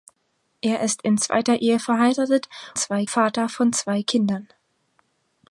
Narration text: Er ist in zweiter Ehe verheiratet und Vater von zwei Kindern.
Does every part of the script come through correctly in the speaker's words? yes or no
no